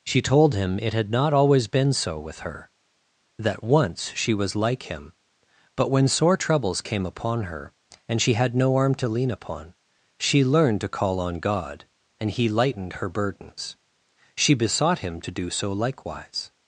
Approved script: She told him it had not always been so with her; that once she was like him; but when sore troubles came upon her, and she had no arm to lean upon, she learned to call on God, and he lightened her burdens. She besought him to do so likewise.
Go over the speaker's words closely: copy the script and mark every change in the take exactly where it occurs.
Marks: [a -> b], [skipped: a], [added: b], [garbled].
She told him it had not always been so with her; that once she was like him; but when sore troubles came upon her, and she had no arm to lean upon, she learned to call on God, and he lightened her burdens. She besought him to do so likewise.